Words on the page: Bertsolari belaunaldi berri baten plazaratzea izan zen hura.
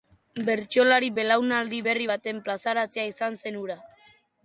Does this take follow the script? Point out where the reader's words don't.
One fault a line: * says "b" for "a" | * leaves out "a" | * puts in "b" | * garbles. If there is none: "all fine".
all fine